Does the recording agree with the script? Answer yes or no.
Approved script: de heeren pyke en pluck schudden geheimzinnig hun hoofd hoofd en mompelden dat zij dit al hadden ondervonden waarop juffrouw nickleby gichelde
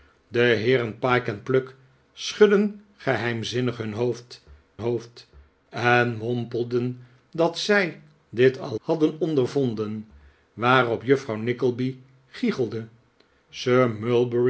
yes